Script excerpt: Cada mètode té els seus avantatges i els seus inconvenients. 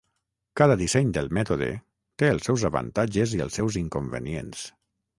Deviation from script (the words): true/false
true